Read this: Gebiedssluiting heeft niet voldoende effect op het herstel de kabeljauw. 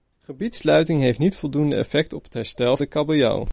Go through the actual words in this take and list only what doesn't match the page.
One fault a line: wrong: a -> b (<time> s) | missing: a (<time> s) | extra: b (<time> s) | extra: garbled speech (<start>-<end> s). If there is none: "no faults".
no faults